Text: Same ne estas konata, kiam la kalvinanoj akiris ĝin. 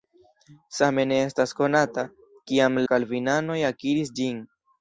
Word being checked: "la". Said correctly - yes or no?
no